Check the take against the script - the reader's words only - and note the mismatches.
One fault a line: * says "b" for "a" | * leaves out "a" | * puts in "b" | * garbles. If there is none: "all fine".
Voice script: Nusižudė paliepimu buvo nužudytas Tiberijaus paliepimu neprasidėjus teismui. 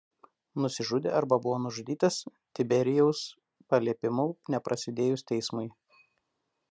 * says "arba" for "paliepimu"